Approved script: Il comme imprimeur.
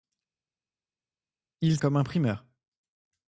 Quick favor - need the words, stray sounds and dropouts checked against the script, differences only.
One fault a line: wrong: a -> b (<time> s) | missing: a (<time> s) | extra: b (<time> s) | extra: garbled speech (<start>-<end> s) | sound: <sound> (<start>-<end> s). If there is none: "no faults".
no faults